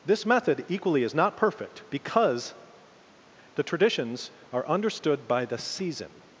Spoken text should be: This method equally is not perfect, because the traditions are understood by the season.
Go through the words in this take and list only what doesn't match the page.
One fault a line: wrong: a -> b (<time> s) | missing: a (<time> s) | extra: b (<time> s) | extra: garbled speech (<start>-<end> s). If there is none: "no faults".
no faults